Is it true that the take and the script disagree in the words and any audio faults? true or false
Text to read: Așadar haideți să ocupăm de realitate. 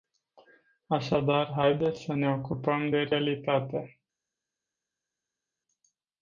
true